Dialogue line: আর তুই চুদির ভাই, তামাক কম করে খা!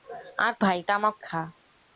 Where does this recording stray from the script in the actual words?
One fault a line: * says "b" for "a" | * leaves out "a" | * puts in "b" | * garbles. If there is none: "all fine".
* leaves out "তুই চুদির"
* leaves out "কম করে"